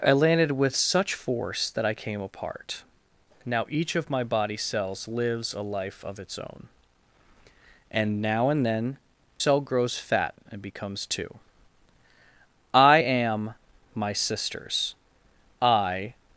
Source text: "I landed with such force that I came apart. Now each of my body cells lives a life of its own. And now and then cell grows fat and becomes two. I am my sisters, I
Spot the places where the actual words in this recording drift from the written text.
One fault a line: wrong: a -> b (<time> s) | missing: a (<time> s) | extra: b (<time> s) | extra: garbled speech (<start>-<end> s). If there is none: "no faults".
no faults